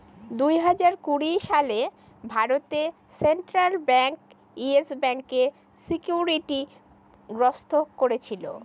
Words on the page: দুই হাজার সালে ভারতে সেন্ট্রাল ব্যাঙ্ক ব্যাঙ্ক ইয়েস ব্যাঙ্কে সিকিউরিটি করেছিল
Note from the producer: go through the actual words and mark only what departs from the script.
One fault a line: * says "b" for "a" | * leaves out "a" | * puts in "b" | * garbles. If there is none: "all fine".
* puts in "কুড়ি"
* leaves out "ব্যাঙ্ক"
* puts in "গ্রস্ত"